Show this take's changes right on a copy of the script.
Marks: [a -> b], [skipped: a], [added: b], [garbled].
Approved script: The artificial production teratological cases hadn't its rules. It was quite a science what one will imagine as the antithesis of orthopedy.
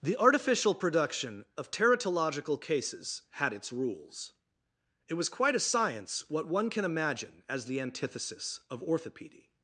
The artificial production [added: of] teratological cases [hadn't -> had] its rules. It was quite a science what one [will -> can] imagine as the antithesis of orthopedy.